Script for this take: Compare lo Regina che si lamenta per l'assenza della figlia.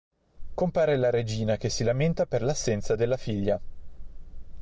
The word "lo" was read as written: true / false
false